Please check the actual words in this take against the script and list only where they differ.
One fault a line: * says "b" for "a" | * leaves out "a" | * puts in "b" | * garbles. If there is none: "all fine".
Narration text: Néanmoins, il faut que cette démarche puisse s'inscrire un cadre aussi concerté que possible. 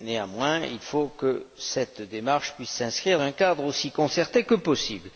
all fine